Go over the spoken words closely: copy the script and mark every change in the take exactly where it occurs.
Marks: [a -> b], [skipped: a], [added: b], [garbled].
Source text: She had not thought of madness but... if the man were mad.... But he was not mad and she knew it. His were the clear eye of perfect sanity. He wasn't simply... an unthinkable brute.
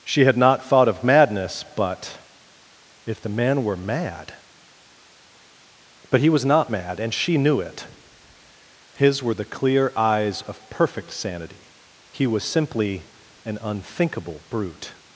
She had not thought of madness but... if the man were mad.... But he was not mad and she knew it. His were the clear [eye -> eyes] of perfect sanity. He [wasn't -> was] simply... an unthinkable brute.